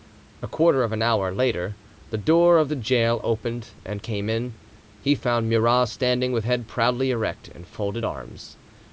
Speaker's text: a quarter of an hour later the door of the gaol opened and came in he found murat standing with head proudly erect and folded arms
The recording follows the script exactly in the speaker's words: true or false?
true